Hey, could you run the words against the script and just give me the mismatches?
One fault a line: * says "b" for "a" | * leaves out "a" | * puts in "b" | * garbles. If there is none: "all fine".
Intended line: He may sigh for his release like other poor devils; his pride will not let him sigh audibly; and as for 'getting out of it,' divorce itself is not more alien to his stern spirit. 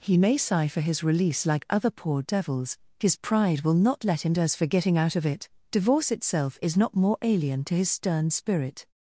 * leaves out "sigh audibly and"